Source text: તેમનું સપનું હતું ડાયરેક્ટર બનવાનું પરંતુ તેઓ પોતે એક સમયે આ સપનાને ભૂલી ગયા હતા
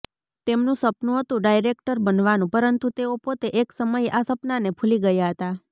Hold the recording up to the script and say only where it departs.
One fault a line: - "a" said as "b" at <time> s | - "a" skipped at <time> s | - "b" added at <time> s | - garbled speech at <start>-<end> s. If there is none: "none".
none